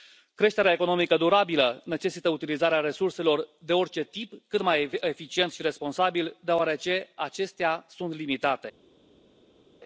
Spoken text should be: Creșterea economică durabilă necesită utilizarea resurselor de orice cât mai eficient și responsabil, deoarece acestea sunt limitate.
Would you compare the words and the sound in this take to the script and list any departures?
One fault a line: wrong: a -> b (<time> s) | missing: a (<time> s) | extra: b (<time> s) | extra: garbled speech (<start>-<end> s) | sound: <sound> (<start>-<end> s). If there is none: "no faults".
extra: tip (4.0 s)